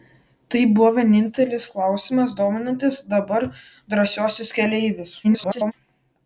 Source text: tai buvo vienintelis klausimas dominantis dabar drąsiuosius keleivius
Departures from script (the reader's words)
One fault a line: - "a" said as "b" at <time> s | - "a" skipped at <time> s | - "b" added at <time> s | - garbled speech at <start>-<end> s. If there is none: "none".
- garbled speech at 5.2-5.7 s